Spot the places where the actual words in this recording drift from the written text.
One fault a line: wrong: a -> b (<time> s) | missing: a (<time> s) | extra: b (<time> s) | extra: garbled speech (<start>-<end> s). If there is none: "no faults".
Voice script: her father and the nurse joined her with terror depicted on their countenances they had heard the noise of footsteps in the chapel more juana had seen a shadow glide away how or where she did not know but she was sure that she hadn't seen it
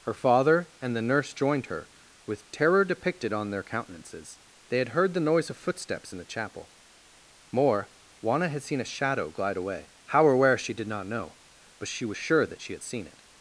wrong: hadn't -> had (12.7 s)